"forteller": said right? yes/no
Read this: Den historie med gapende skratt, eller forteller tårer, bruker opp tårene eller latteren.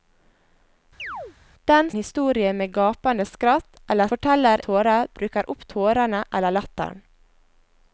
yes